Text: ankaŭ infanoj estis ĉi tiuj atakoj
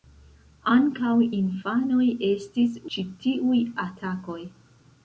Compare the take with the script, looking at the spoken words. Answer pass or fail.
pass